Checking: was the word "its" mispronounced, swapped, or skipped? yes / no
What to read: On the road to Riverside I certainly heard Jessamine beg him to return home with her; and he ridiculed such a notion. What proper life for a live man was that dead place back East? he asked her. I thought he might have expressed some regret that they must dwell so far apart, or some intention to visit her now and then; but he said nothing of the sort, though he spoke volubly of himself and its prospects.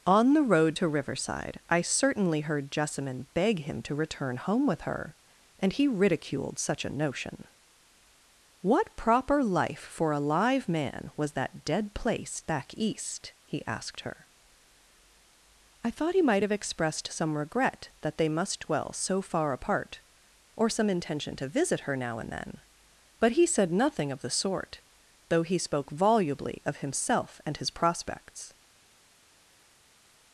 yes